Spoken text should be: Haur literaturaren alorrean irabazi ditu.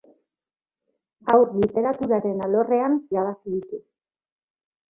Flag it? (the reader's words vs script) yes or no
no